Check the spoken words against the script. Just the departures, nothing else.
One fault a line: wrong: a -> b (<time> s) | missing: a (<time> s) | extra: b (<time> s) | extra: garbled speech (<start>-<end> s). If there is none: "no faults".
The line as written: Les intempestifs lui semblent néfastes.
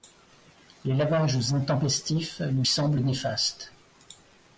extra: lavages (0.9 s)